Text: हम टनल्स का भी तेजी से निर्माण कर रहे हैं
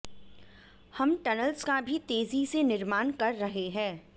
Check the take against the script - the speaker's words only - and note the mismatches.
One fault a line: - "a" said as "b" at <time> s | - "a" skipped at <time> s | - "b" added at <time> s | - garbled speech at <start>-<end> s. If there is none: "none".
none